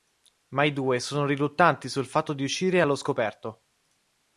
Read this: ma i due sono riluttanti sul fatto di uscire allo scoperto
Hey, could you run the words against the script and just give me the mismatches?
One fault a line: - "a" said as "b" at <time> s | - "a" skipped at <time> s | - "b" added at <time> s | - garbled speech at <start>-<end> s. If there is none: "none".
none